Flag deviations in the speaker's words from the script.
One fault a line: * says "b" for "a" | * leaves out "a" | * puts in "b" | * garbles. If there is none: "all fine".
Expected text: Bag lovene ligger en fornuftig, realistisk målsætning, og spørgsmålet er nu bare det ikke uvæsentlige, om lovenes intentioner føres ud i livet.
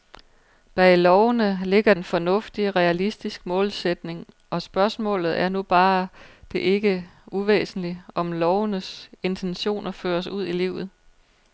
all fine